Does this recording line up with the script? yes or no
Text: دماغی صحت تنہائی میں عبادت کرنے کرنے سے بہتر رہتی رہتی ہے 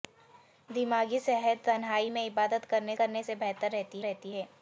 yes